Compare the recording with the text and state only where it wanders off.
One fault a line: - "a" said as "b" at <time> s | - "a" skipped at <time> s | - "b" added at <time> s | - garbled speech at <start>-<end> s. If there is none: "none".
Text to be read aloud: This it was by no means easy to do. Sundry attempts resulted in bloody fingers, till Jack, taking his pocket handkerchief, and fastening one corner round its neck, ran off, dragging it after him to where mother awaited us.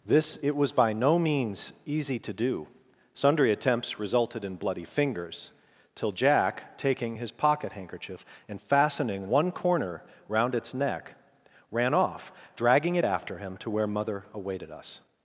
none